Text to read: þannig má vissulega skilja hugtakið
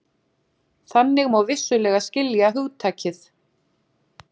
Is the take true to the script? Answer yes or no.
yes